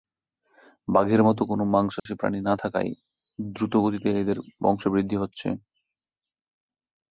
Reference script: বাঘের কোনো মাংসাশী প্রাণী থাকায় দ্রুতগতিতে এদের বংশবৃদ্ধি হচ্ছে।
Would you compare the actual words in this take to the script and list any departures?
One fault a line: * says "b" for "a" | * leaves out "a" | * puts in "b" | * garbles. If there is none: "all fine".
* puts in "মতো"
* puts in "না"